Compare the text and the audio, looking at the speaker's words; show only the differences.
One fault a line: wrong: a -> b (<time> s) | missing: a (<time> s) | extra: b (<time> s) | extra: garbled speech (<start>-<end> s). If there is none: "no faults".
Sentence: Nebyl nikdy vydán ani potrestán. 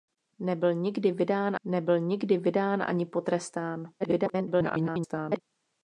extra: nebyl nikdy vydán (1.6 s)
extra: garbled speech (4.0-5.4 s)